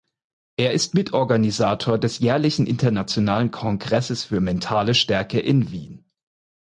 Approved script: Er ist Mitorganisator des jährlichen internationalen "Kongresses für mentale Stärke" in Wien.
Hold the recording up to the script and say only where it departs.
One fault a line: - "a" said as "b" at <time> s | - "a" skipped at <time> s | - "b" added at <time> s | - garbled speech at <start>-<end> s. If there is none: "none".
none